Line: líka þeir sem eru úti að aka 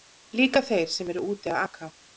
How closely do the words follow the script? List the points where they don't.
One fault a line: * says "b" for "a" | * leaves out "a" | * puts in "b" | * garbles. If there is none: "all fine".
all fine